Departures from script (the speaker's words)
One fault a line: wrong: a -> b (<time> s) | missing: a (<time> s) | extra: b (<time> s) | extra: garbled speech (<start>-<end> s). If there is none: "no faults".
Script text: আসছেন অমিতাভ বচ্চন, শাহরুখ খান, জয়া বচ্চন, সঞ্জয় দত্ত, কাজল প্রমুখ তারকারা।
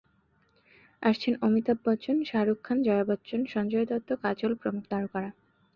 no faults